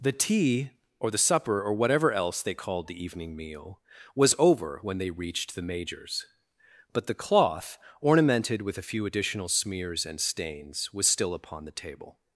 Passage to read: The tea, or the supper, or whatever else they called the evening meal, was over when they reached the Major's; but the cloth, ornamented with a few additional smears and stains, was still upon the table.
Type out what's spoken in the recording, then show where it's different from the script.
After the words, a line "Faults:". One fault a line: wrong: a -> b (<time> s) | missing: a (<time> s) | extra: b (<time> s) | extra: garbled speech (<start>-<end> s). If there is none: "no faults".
The tea, or the supper, or whatever else they called the evening meal, was over when they reached the Major's; but the cloth, ornamented with a few additional smears and stains, was still upon the table.
Faults:
no faults